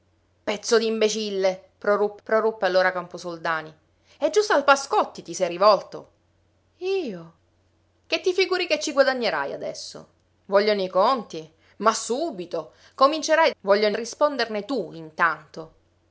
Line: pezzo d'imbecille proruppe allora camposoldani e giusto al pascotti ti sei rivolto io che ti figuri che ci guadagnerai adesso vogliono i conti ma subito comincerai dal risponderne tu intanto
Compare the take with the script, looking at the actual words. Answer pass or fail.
fail